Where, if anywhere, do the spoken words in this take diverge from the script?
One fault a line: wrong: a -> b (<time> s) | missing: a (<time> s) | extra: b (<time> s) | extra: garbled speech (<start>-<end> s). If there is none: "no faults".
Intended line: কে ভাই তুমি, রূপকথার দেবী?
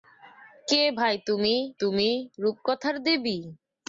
extra: তুমি (1.8 s)